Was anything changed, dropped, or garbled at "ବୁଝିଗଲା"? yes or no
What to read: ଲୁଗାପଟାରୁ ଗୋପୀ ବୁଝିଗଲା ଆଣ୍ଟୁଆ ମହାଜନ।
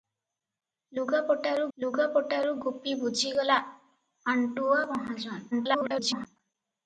no